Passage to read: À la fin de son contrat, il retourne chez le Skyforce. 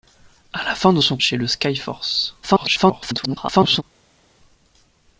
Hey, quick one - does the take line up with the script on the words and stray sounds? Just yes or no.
no